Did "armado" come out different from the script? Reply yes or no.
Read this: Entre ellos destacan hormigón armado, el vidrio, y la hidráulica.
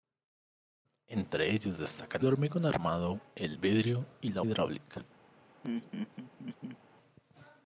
no